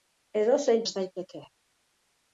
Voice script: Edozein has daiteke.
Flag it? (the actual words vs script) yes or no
no